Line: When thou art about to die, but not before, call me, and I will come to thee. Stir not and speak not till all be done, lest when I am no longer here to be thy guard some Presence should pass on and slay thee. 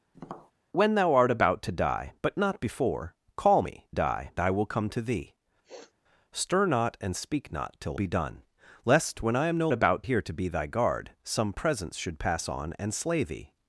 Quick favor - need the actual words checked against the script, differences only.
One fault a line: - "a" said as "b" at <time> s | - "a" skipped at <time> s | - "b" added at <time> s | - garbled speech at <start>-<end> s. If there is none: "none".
- "and" said as "die" at 3.9 s
- "all" skipped at 8.0 s
- "longer" said as "about" at 9.7 s